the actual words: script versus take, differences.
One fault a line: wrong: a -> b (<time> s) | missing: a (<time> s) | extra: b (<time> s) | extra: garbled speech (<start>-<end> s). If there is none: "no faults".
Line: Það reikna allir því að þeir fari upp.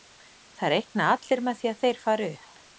extra: með (1.5 s)